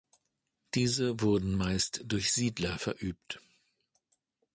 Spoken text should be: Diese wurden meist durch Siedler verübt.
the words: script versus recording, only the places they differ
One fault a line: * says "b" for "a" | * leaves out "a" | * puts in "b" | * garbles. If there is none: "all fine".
all fine